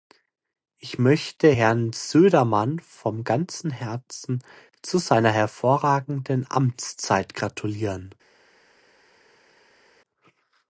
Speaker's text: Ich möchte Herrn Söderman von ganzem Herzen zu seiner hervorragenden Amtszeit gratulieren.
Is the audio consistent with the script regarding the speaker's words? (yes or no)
yes